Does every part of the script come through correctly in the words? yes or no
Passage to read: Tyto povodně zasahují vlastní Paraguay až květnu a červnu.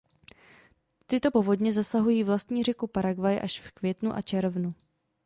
no